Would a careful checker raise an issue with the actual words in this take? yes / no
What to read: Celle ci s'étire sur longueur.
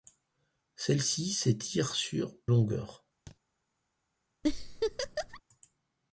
no